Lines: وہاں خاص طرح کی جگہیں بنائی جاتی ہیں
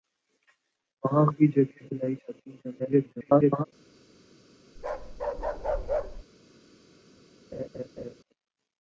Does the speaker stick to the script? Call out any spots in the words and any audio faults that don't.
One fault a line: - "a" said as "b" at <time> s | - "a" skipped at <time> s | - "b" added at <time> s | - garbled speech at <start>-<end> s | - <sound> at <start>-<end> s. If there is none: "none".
- "خاص طرح" skipped at 1.2 s
- garbled speech at 2.8-3.6 s
- bark at 4.8-6.2 s
- laugh at 7.5-8.1 s